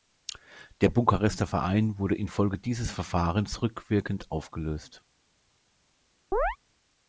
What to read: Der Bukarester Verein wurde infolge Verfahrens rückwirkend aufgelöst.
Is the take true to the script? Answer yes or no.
no